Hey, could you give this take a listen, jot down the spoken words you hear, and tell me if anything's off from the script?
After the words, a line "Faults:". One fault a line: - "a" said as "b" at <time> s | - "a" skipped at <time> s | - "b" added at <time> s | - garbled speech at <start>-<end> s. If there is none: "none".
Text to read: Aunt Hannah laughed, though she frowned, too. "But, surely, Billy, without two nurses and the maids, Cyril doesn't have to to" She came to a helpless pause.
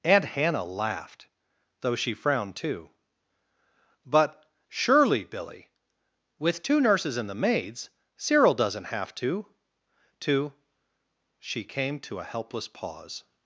Aunt Hannah laughed, though she frowned, too. "But, surely, Billy, with two nurses and the maids, Cyril doesn't have to to" She came to a helpless pause.
Faults:
- "without" said as "with" at 6.4 s